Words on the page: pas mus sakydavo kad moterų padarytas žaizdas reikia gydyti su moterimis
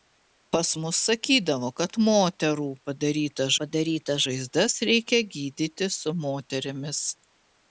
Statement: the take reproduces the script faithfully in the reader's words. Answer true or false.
false